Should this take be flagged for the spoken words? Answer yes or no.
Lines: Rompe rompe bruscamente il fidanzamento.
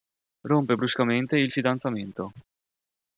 yes